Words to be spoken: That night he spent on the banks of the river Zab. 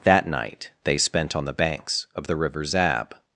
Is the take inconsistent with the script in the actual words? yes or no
yes